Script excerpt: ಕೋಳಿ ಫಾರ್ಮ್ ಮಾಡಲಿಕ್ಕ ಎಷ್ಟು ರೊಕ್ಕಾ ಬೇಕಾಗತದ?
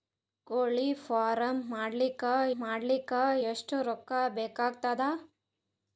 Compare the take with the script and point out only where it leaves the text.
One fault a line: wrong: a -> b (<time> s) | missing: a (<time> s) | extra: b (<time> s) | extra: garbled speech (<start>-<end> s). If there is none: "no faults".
extra: ಮಾಡಲಿಕ್ಕ (2.6 s)